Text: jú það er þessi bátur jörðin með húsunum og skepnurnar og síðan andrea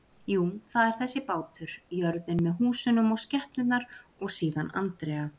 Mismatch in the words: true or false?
false